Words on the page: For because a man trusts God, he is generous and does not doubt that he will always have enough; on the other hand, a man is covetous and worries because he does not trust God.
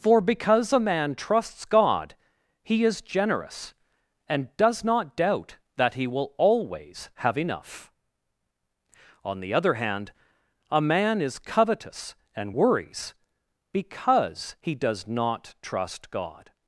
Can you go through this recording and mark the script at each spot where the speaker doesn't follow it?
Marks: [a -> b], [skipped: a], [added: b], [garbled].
For because a man trusts God, he is generous and does not doubt that he will always have enough; on the other hand, a man is covetous and worries because he does not trust God.